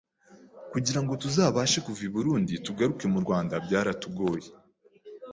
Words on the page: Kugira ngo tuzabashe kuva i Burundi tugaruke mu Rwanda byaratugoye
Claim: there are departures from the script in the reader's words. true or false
false